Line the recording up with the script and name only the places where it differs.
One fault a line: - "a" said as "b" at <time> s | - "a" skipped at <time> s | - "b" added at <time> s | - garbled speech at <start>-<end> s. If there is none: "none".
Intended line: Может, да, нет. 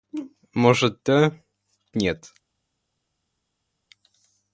none